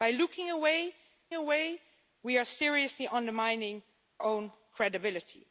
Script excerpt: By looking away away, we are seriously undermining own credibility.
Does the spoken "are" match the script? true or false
true